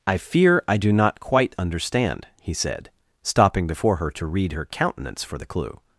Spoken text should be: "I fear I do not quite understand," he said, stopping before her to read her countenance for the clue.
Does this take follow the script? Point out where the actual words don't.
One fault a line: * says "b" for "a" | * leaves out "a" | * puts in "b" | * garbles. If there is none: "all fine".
all fine